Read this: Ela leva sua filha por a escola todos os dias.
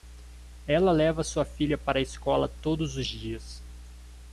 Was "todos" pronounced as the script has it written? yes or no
yes